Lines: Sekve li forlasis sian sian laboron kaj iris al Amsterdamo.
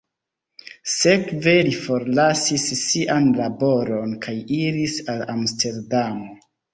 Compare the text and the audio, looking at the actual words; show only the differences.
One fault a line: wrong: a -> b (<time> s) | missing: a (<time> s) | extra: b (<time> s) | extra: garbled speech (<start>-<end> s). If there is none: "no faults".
missing: sian (3.3 s)